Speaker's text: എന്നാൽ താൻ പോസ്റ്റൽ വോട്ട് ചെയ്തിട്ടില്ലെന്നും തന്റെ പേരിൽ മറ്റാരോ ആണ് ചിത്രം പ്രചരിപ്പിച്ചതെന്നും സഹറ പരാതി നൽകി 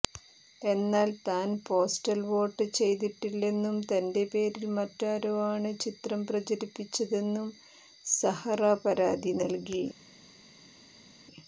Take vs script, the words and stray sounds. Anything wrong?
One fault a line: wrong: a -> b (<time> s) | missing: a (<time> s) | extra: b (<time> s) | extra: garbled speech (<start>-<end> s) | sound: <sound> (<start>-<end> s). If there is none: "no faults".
no faults